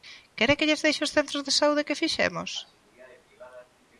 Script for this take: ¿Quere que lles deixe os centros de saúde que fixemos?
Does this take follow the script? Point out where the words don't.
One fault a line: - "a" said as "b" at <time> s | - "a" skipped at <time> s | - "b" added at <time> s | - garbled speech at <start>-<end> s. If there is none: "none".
none